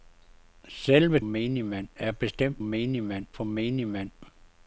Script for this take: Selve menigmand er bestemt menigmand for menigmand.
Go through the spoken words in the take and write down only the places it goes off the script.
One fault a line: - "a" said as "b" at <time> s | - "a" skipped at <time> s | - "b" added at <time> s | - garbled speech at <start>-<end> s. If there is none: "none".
none